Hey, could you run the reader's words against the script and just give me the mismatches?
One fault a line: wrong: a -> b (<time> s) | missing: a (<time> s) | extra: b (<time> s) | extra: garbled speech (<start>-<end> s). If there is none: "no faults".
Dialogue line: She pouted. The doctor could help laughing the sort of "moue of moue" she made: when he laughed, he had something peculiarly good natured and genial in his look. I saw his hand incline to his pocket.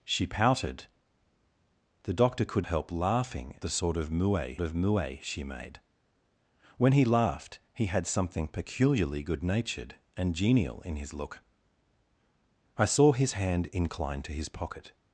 no faults